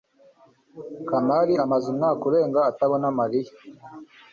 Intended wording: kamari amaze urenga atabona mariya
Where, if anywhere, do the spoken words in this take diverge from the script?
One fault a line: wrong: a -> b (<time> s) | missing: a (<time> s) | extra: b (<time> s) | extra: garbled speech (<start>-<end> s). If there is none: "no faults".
extra: umwaka (1.9 s)